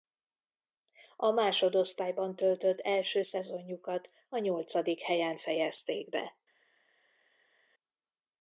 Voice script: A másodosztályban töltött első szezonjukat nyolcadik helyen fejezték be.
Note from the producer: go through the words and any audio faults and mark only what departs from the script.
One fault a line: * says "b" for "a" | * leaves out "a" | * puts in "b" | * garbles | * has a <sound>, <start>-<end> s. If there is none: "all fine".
* puts in "a"